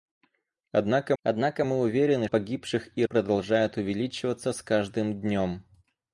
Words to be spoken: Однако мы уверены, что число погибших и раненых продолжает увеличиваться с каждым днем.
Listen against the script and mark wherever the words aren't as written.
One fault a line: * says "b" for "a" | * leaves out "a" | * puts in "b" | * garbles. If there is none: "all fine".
* puts in "однако"
* leaves out "что число"
* leaves out "раненых"